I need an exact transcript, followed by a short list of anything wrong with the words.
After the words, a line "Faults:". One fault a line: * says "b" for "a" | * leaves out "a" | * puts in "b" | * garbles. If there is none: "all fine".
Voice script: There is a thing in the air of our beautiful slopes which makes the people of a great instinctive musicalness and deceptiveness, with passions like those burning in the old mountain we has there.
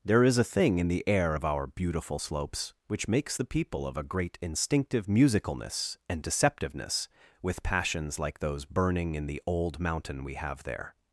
There is a thing in the air of our beautiful slopes which makes the people of a great instinctive musicalness and deceptiveness, with passions like those burning in the old mountain we have there.
Faults:
* says "have" for "has"